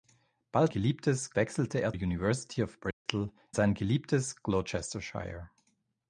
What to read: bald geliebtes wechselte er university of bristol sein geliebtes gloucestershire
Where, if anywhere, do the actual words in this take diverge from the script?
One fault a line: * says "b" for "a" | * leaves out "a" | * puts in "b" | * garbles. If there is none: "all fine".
all fine